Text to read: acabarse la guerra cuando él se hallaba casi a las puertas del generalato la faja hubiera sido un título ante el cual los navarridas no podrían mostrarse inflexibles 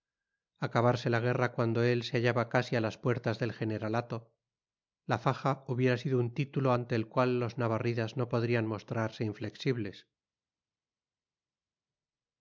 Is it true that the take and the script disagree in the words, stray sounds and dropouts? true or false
false